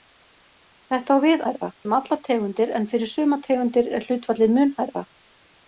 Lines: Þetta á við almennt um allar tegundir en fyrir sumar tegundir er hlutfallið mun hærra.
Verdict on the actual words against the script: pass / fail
fail